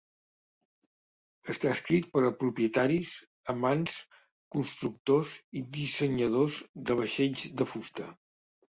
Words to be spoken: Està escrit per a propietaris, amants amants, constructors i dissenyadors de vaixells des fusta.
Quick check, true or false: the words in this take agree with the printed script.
false